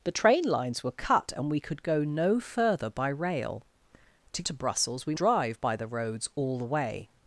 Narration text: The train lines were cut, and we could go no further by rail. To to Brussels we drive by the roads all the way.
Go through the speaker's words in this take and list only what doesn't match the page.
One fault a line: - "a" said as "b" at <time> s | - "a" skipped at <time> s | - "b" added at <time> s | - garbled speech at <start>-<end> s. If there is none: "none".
none